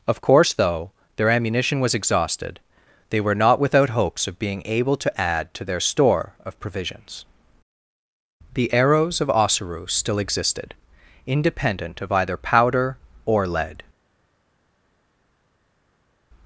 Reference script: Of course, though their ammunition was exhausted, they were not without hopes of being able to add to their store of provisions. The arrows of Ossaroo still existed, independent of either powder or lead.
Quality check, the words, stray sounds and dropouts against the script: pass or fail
pass